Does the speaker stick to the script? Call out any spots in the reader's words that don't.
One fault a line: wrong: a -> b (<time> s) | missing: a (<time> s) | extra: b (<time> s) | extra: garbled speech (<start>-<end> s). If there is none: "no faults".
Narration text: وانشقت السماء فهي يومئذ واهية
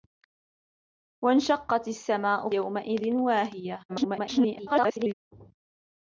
missing: فهي (2.5 s)
extra: garbled speech (3.9-5.1 s)